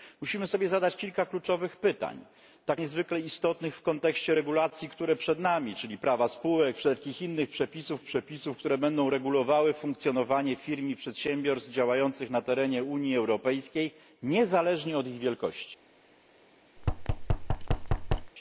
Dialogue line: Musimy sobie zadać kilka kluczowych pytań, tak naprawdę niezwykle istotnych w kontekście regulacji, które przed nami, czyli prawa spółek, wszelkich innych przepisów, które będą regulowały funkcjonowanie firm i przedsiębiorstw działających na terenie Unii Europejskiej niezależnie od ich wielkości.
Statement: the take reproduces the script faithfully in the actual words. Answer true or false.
false